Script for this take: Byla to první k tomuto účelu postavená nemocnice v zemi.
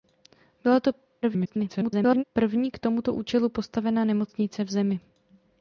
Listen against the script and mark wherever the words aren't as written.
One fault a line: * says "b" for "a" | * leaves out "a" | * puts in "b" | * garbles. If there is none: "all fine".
* garbles